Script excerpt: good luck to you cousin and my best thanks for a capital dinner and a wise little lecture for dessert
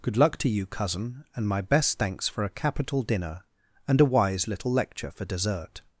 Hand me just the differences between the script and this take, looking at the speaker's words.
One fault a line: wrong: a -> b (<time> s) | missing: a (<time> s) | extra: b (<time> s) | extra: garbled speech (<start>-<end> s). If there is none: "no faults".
no faults